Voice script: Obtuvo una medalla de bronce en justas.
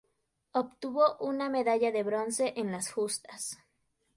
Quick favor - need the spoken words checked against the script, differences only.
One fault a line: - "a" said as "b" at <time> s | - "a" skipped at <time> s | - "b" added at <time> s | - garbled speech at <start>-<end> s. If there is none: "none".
- "las" added at 2.7 s